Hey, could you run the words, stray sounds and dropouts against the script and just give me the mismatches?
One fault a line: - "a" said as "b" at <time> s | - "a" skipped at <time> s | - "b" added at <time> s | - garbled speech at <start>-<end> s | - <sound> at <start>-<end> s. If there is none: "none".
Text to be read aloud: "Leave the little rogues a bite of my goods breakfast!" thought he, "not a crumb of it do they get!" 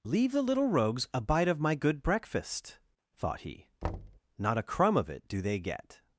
- "goods" said as "good" at 1.8 s
- thud at 3.8-4.2 s